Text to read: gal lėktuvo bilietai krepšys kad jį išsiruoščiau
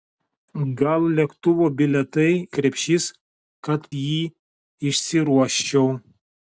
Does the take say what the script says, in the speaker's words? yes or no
yes